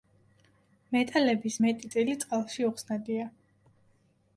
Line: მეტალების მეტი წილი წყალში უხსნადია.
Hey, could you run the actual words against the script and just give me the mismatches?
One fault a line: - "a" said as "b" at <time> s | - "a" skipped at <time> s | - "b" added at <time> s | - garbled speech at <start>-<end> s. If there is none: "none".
none